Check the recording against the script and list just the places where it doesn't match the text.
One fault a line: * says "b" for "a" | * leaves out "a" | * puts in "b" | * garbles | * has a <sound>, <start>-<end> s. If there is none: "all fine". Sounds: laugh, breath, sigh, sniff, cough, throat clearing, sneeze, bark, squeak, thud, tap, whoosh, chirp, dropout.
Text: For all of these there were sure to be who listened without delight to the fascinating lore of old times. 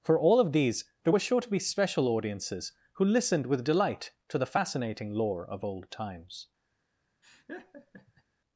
* puts in "special audiences"
* says "with" for "without"
* has a laugh, 7.2-8.2 s